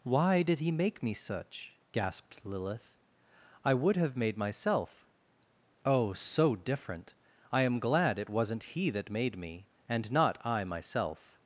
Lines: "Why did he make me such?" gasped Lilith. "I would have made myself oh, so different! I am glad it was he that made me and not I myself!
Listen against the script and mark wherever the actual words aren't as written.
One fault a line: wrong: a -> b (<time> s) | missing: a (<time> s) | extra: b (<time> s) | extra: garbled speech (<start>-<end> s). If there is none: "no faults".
wrong: was -> wasn't (8.3 s)